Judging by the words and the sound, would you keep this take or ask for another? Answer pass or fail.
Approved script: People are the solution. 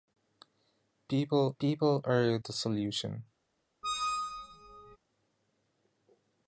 fail